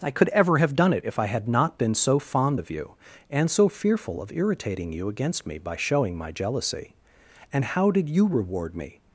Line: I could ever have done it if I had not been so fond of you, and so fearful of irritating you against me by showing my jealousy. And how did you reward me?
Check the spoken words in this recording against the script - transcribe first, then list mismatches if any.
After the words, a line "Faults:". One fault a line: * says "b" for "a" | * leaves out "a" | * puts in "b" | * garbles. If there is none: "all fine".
I could ever have done it if I had not been so fond of you, and so fearful of irritating you against me by showing my jealousy. And how did you reward me?
Faults:
all fine